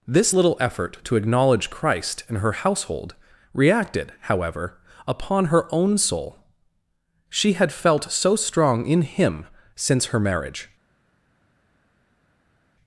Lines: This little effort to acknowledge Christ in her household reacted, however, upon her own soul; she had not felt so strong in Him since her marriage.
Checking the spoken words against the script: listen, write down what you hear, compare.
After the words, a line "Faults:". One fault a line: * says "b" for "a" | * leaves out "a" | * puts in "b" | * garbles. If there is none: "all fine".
This little effort to acknowledge Christ in her household reacted, however, upon her own soul; she had felt so strong in Him since her marriage.
Faults:
* leaves out "not"